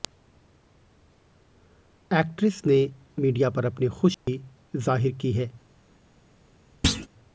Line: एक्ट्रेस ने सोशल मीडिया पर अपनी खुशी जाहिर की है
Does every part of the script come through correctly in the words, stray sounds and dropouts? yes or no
no